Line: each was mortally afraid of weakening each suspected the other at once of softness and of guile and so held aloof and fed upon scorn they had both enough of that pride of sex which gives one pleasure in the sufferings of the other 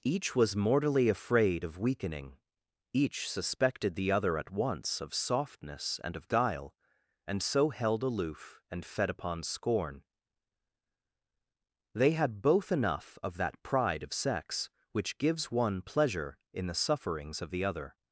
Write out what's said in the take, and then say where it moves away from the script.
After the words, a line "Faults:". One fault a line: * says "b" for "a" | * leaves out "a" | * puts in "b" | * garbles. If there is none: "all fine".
each was mortally afraid of weakening each suspected the other at once of softness and of guile and so held aloof and fed upon scorn they had both enough of that pride of sex which gives one pleasure in the sufferings of the other
Faults:
all fine